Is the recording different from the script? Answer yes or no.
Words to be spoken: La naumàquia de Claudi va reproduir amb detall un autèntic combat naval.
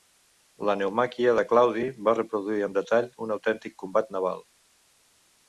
no